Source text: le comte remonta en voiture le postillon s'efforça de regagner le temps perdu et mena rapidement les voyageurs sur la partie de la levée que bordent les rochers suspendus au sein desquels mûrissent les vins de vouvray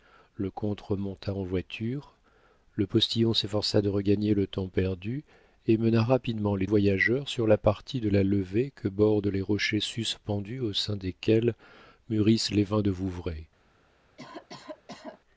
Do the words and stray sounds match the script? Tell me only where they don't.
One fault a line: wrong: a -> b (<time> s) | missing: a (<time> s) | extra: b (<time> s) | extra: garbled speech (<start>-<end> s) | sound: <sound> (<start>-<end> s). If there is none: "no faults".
sound: cough (14.2-15.2 s)